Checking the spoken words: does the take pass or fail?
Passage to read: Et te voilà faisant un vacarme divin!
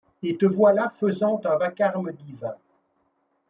pass